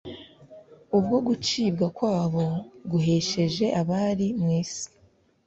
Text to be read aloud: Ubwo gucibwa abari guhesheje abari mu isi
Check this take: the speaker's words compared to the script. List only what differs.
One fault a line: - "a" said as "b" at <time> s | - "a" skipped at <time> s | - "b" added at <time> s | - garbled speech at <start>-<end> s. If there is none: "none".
- "abari" said as "kwabo" at 1.9 s